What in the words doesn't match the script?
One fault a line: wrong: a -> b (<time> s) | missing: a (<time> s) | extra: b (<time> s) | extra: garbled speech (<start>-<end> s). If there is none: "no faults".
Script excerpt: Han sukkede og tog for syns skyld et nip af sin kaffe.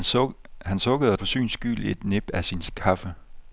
missing: tog (1.2 s)